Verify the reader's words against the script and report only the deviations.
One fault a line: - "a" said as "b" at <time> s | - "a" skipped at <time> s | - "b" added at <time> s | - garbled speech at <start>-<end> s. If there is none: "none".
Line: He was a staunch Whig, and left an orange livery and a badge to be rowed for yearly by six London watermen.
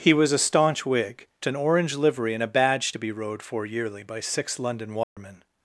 - "and left" skipped at 1.3 s